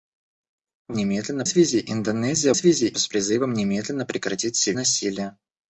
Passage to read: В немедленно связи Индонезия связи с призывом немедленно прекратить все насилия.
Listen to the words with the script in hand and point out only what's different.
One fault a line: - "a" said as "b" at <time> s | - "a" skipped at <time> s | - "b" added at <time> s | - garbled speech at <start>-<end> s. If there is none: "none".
none